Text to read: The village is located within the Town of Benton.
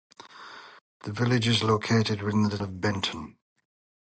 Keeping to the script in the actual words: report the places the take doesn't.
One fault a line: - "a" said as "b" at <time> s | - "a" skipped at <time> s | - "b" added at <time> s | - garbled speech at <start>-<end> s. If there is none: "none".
- "Town" skipped at 2.6 s